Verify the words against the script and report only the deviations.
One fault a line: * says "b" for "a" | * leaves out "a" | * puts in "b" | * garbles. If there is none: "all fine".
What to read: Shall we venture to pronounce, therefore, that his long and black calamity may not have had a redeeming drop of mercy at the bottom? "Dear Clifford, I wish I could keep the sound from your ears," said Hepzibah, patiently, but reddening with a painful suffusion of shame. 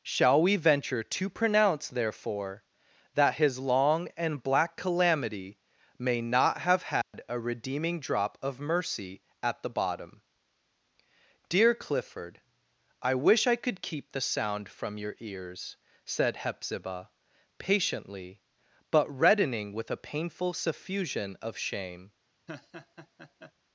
all fine